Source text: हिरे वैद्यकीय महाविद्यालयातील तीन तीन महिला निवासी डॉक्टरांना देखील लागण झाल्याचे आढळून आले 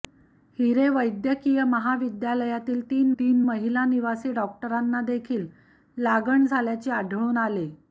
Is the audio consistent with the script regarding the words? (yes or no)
yes